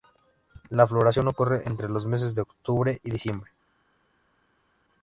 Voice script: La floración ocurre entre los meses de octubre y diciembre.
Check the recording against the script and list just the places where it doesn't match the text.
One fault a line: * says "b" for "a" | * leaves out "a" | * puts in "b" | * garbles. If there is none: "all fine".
all fine